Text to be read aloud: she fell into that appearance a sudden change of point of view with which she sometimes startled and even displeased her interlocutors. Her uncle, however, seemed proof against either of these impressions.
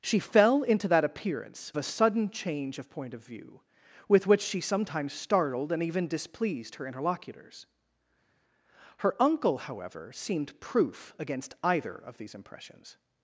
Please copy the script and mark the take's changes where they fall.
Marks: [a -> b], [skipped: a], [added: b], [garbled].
she fell into that appearance a sudden change of point of view with which she sometimes startled and even displeased her interlocutors. Her uncle, however, seemed proof against either of these impressions.